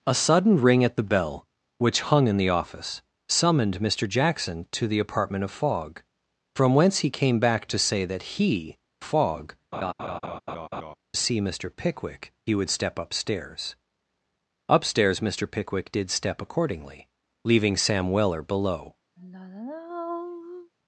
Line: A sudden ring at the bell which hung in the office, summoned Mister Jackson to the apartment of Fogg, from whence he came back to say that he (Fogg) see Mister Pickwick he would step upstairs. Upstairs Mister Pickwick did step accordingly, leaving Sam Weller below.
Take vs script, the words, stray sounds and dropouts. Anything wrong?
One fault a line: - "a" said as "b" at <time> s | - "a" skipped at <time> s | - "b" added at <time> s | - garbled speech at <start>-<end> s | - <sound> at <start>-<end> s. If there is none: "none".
- laugh at 9.7-11.0 s
- sigh at 19.2-20.7 s